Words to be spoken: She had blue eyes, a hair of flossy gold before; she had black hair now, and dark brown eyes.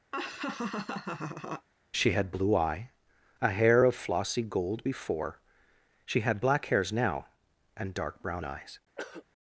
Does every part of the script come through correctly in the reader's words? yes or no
no